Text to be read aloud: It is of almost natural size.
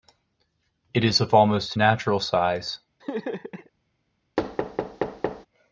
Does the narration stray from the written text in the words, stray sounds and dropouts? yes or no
yes